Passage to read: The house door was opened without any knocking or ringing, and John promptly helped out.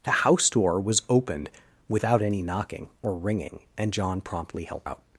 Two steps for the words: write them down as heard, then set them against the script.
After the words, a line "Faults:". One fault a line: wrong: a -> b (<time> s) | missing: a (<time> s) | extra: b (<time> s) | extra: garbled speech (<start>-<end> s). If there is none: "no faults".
The house door was opened without any knocking or ringing, and John promptly helped out.
Faults:
no faults